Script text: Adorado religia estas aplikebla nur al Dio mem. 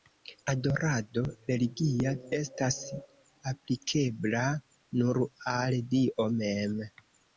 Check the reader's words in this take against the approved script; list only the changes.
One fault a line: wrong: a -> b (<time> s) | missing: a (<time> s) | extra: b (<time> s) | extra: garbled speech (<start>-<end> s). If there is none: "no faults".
no faults